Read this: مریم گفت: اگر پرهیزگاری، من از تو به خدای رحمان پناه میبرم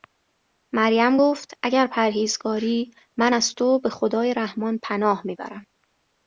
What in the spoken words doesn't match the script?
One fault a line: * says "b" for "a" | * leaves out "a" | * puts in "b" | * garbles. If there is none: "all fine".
all fine